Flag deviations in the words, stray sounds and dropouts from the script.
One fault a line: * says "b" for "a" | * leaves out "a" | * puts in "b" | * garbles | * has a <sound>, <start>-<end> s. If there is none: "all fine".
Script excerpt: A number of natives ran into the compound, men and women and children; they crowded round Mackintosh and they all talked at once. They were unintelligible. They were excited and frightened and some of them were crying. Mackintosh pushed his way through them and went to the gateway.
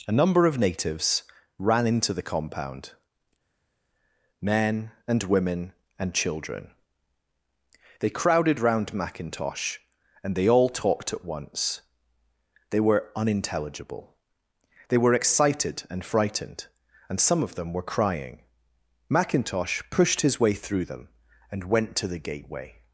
all fine